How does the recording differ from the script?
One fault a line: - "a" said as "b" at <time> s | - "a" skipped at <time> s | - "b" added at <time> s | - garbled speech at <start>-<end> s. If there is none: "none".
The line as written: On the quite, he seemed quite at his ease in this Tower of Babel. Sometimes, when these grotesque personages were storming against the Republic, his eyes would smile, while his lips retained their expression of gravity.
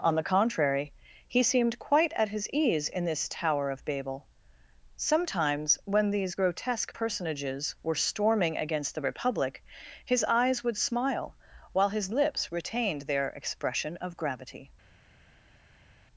- "quite" said as "contrary" at 0.2 s